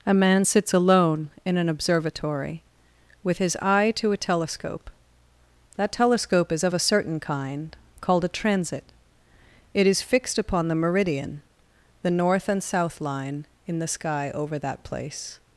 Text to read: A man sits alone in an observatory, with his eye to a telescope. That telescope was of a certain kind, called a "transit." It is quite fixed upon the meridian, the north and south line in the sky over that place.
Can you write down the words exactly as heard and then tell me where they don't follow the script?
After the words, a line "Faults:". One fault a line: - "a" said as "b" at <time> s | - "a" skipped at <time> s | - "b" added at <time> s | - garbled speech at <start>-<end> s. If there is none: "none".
A man sits alone in an observatory, with his eye to a telescope. That telescope is of a certain kind, called a "transit." It is fixed upon the meridian, the north and south line in the sky over that place.
Faults:
- "was" said as "is" at 6.5 s
- "quite" skipped at 10.0 s